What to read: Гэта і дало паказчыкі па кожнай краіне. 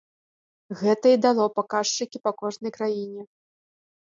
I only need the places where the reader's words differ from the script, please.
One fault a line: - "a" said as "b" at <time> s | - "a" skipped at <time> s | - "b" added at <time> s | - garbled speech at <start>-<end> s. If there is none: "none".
none